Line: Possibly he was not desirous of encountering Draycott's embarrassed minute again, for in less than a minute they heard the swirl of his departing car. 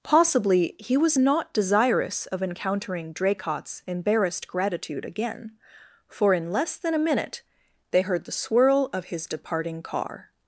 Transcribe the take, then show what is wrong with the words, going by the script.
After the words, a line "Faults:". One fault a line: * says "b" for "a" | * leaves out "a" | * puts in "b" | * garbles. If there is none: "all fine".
Possibly he was not desirous of encountering Draycott's embarrassed gratitude again, for in less than a minute they heard the swirl of his departing car.
Faults:
* says "gratitude" for "minute"